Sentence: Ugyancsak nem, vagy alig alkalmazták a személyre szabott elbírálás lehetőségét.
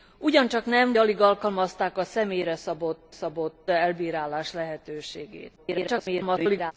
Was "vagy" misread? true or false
true